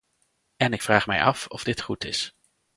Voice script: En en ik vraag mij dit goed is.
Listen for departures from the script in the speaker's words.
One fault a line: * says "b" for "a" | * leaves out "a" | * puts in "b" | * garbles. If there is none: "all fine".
* leaves out "en"
* puts in "af of"